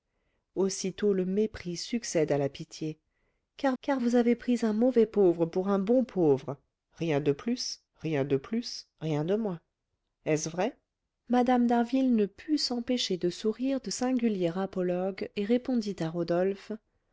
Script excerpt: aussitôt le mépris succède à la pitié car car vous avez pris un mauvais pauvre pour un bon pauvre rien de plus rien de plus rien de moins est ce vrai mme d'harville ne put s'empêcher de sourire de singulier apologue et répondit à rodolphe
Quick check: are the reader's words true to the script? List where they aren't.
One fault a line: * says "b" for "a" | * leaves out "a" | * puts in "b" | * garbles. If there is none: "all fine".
all fine